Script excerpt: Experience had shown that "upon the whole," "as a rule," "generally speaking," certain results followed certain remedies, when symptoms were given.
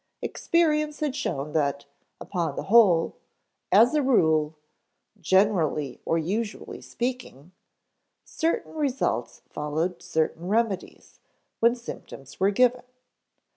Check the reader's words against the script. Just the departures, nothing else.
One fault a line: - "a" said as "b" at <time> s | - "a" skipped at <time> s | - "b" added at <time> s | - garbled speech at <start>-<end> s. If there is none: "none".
- "or usually" added at 6.0 s